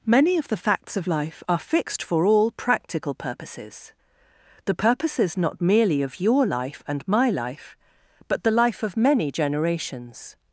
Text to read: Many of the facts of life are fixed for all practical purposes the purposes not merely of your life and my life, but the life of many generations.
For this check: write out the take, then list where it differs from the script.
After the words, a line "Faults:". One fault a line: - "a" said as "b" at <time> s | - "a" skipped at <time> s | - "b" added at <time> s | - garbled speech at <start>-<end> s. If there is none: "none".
Many of the facts of life are fixed for all practical purposes the purposes not merely of your life and my life, but the life of many generations.
Faults:
none